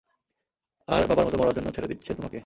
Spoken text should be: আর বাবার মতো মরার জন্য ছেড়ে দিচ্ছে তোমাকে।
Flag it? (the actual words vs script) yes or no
no